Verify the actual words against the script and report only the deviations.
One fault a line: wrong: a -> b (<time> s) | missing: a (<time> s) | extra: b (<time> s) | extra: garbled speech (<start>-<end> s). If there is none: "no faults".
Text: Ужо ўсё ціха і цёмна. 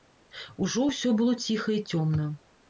extra: было (1.2 s)